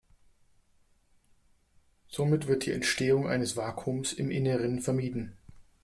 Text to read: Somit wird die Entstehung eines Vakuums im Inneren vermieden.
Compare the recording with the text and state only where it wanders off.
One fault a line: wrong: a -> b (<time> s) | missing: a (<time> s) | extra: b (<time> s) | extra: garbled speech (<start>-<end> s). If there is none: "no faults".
no faults